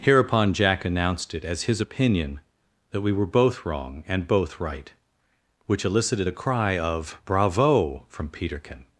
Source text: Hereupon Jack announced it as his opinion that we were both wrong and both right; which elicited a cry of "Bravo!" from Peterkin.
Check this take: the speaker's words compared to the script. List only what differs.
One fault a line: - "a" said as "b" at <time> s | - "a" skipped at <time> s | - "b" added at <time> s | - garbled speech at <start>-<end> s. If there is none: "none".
none